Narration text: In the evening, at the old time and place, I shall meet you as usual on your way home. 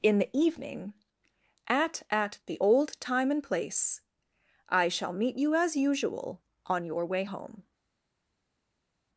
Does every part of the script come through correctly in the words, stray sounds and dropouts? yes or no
no